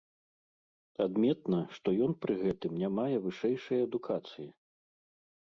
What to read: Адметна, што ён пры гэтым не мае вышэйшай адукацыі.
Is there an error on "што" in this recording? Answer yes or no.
no